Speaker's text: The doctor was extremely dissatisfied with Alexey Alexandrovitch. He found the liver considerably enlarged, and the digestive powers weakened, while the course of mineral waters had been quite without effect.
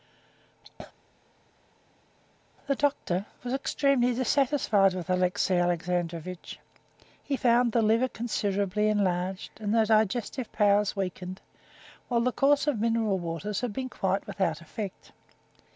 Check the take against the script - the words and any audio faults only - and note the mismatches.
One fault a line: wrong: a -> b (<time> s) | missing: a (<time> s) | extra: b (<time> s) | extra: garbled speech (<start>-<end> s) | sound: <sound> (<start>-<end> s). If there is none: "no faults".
no faults